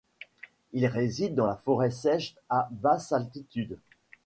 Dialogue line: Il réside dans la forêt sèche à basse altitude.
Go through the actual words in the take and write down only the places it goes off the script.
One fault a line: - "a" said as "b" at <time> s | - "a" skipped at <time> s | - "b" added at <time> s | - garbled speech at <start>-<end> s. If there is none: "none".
none